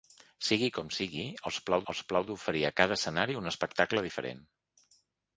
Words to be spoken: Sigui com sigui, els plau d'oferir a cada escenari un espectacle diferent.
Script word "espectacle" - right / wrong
right